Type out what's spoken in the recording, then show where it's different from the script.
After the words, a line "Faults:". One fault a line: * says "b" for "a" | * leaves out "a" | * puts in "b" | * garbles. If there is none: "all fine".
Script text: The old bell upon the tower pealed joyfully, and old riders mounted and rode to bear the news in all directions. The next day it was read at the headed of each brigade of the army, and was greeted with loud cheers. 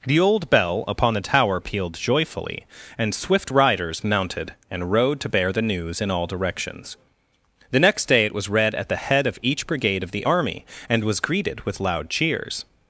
The old bell upon the tower pealed joyfully, and swift riders mounted and rode to bear the news in all directions. The next day it was read at the head of each brigade of the army, and was greeted with loud cheers.
Faults:
* says "swift" for "old"
* says "head" for "headed"